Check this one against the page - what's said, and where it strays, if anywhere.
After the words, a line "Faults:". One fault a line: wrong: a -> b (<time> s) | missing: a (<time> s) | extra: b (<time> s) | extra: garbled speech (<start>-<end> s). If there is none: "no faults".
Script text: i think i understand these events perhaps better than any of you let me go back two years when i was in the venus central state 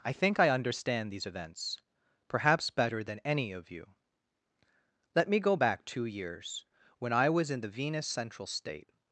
i think i understand these events perhaps better than any of you let me go back two years when i was in the venus central state
Faults:
no faults